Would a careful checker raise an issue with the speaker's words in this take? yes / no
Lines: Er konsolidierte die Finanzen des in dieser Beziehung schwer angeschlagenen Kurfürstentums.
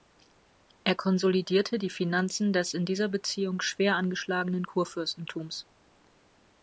no